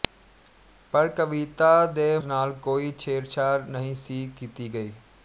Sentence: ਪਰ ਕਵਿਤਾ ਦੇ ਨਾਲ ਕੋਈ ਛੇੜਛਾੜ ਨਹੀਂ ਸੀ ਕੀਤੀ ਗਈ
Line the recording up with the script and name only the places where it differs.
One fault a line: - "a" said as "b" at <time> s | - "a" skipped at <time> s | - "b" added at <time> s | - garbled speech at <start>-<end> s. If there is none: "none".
none